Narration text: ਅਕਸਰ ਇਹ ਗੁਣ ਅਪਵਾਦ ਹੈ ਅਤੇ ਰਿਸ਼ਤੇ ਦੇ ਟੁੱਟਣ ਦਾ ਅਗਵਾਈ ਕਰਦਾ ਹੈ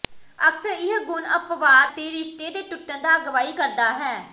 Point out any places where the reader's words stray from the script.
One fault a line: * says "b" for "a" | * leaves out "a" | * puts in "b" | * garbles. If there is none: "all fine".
* leaves out "ਹੈ"